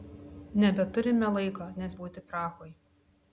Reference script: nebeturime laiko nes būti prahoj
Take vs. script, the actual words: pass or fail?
pass